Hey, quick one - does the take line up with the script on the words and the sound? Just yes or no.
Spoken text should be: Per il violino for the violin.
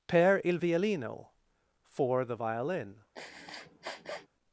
no